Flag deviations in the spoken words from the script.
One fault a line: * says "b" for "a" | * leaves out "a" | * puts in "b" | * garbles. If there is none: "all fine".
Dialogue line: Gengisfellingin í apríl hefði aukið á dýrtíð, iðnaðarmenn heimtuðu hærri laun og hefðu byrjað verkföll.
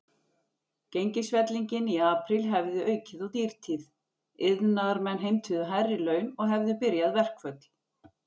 all fine